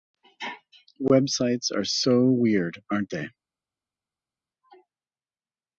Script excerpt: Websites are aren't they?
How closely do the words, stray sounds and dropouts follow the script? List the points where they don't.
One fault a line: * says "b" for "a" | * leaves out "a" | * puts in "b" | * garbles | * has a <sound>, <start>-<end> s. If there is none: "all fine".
* puts in "so weird"